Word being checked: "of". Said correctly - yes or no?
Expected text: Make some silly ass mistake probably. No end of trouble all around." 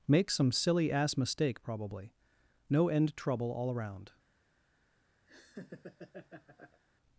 no